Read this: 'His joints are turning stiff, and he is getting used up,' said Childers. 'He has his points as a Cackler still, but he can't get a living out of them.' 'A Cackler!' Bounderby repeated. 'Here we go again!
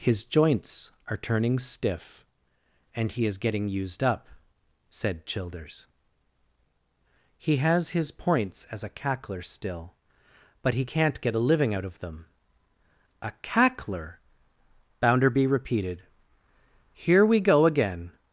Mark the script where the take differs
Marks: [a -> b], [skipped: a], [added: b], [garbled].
'His joints are turning stiff, and he is getting used up,' said Childers. 'He has his points as a Cackler still, but he can't get a living out of them.' 'A Cackler!' Bounderby repeated. 'Here we go again!